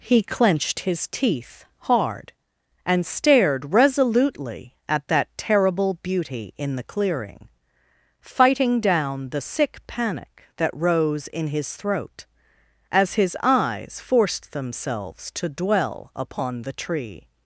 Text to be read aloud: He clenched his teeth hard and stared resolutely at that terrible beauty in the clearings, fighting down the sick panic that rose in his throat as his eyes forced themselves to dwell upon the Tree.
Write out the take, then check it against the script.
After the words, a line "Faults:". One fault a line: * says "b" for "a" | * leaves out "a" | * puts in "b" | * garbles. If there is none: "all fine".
He clenched his teeth hard and stared resolutely at that terrible beauty in the clearing, fighting down the sick panic that rose in his throat as his eyes forced themselves to dwell upon the Tree.
Faults:
* says "clearing" for "clearings"